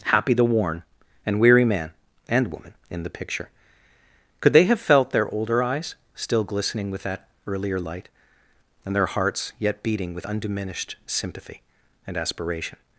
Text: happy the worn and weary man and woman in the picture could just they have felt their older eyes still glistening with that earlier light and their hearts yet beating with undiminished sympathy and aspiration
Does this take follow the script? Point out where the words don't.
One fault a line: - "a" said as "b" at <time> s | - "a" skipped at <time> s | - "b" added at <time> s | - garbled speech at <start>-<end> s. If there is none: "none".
- "just" skipped at 4.5 s